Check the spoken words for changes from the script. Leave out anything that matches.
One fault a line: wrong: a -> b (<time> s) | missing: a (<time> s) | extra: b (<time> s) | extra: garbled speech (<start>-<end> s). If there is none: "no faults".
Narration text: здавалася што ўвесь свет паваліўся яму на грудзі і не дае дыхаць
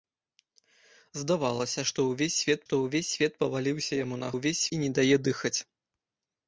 extra: што ўвесь свет (2.7 s)
wrong: грудзі -> ўвесь (4.3 s)